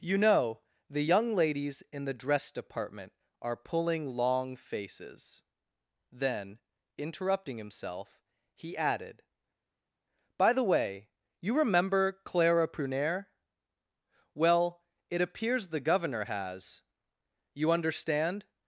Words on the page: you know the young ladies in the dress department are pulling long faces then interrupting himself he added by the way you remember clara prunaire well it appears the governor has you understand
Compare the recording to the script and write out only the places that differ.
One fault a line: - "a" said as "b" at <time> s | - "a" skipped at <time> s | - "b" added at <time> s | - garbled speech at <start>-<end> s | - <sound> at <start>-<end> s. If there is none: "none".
none